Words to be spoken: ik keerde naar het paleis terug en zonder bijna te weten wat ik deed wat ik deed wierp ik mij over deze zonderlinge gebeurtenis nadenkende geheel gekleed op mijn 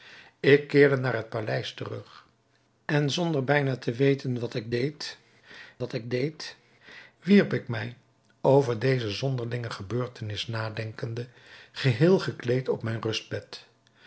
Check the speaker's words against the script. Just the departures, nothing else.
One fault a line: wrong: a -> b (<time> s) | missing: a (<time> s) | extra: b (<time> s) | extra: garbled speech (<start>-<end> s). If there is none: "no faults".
no faults